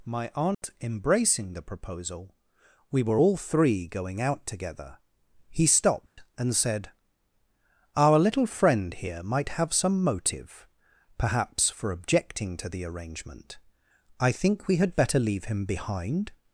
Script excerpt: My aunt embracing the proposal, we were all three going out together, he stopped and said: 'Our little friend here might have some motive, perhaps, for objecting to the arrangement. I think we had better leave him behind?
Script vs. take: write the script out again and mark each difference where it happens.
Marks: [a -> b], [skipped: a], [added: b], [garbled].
My aunt embracing the proposal, we were all three going out together, he stopped and said: 'Our little friend here might have some motive, perhaps, for objecting to the arrangement. I think we had better leave him behind?